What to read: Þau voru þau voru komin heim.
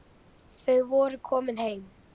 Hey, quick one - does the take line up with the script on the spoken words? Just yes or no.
no